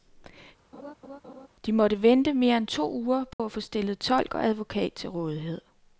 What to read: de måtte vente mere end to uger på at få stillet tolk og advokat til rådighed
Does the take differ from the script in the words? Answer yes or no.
no